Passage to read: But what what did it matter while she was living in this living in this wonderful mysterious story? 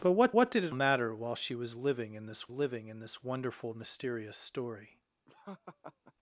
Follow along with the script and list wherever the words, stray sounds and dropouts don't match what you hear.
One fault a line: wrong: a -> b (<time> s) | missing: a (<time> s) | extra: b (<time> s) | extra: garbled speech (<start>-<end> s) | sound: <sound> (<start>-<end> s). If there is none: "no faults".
sound: laugh (5.3-6.1 s)